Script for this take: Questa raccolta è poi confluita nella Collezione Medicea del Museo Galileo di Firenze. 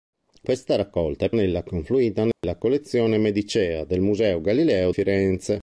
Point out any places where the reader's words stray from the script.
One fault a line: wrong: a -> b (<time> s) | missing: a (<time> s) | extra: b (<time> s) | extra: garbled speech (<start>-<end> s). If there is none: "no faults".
wrong: poi -> nella (1.3 s)
missing: di (4.9 s)